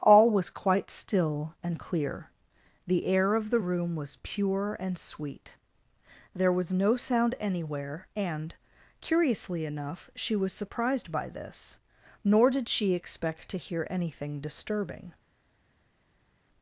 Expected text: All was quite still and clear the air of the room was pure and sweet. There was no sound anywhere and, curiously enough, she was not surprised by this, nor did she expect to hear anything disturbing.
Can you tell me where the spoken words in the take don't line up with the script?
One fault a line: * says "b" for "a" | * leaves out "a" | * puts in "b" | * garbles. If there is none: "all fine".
* leaves out "not"